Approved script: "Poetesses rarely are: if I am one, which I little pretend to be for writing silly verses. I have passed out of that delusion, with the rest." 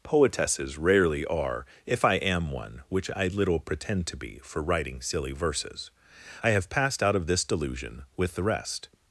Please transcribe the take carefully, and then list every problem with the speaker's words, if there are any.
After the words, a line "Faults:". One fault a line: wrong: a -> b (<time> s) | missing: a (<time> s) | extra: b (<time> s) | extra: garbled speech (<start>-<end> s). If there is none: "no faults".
"Poetesses rarely are: if I am one, which I little pretend to be for writing silly verses. I have passed out of this delusion, with the rest."
Faults:
wrong: that -> this (7.3 s)